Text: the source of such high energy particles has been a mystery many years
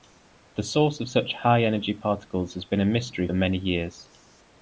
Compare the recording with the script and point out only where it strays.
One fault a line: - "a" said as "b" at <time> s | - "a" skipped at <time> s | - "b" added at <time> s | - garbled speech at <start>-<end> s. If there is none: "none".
none